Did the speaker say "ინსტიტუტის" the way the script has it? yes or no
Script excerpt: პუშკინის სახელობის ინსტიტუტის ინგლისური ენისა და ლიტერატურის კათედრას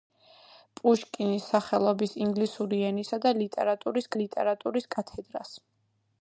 no